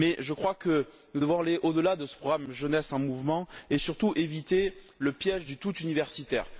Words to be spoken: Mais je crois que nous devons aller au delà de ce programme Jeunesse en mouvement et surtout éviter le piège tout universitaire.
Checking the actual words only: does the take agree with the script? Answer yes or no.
no